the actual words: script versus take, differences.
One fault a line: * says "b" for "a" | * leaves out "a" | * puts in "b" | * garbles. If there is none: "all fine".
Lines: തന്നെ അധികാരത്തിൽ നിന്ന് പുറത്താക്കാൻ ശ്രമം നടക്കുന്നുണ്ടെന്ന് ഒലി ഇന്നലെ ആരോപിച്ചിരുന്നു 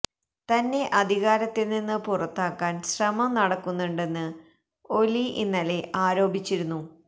all fine